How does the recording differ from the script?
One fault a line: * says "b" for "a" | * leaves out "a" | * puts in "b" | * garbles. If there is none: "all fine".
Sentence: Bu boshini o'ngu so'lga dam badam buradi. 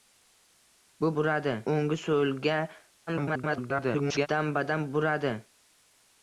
* says "buradi" for "boshini"
* garbles